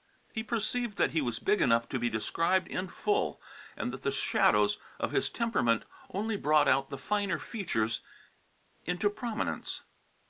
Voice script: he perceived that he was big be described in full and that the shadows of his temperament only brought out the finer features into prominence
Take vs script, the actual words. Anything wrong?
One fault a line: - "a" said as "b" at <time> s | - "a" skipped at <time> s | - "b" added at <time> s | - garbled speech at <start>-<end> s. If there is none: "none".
- "enough to" added at 1.6 s